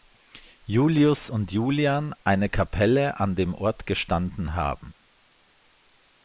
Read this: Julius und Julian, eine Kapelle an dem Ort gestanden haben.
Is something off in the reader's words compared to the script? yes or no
no